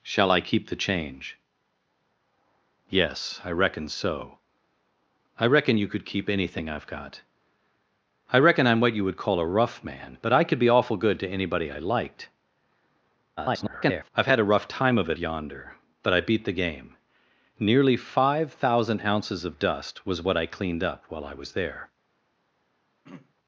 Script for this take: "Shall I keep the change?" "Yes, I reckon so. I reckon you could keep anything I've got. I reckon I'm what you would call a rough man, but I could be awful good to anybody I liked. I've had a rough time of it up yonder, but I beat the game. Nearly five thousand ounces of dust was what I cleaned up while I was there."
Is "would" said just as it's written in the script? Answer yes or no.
yes